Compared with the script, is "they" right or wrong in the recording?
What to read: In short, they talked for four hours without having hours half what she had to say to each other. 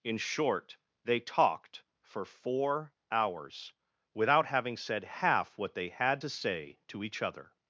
right